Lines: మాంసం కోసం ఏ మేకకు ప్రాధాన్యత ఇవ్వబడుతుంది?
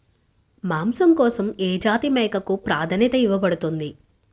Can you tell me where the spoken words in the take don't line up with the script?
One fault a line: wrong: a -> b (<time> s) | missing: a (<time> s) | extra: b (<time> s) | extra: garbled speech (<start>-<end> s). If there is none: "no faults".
extra: జాతి (1.8 s)